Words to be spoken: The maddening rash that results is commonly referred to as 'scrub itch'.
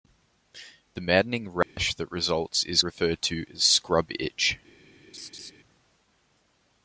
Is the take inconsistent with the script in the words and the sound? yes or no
yes